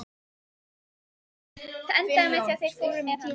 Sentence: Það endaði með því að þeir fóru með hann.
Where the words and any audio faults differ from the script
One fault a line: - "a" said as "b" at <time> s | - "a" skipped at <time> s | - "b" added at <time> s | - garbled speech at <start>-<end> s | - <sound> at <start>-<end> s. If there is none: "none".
none